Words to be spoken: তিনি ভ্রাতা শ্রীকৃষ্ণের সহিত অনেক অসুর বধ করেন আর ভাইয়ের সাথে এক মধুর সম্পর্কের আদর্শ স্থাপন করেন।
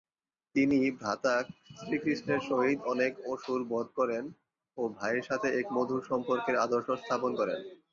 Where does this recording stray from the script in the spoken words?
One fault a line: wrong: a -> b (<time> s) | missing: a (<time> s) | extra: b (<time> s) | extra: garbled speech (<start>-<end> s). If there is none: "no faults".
wrong: আর -> ও (4.8 s)